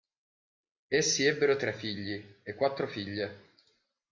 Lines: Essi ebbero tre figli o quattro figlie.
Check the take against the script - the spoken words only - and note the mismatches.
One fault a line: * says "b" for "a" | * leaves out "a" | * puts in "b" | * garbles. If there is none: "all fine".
* says "e" for "o"